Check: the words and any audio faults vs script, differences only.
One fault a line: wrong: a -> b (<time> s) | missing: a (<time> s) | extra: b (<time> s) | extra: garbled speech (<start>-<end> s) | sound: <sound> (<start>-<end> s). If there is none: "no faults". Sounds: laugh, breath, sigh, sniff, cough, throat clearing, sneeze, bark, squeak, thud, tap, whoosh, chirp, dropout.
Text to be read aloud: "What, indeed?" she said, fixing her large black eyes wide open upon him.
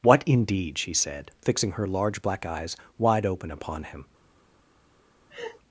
sound: laugh (5.3-5.6 s)